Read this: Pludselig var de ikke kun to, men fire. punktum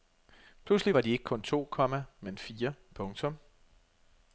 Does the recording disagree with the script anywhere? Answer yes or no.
yes